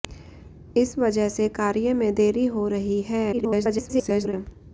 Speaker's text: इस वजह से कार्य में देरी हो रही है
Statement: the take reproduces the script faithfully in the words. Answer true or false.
false